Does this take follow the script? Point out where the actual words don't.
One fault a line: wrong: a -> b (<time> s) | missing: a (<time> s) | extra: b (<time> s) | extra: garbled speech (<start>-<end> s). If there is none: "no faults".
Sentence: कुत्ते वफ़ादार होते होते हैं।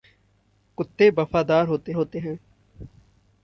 no faults